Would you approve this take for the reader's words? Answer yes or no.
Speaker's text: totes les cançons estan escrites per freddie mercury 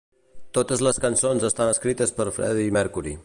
yes